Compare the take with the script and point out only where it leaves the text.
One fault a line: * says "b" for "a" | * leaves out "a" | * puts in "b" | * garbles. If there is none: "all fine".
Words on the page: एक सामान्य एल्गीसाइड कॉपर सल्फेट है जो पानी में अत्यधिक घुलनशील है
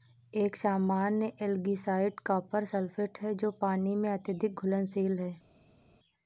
all fine